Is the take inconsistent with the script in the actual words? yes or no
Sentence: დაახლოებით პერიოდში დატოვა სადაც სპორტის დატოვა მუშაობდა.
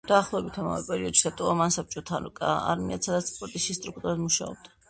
yes